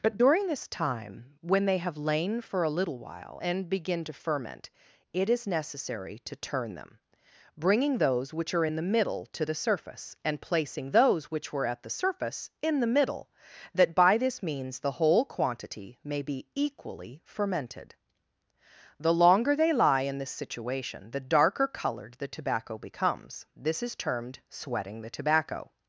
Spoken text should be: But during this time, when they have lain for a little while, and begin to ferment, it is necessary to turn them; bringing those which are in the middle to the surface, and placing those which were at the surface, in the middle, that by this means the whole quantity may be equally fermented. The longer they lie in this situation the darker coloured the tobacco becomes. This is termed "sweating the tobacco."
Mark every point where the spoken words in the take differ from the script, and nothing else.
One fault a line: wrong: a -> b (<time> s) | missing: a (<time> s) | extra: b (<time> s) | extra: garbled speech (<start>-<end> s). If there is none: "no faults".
no faults